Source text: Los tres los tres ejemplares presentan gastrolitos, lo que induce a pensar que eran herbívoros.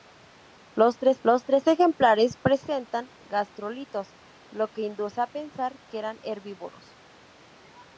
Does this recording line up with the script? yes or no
yes